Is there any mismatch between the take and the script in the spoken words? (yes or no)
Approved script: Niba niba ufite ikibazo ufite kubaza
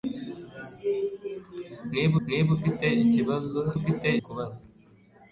no